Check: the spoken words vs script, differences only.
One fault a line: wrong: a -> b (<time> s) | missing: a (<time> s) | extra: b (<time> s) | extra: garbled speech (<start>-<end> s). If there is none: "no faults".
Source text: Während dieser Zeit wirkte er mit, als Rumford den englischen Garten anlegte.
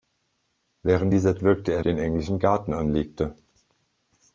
missing: Zeit (1.4 s)
missing: mit als Rumford (1.8 s)